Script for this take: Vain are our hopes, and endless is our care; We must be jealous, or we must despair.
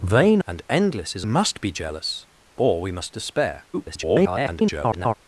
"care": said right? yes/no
no